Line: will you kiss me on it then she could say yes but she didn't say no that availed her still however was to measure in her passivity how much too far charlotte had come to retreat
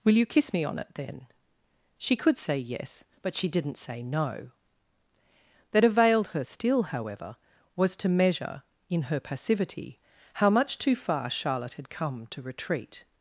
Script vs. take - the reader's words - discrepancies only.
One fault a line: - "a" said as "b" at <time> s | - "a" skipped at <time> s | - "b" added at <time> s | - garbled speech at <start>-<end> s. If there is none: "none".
none